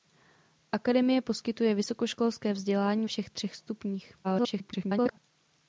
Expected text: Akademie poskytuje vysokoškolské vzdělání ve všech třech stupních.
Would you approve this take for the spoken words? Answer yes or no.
no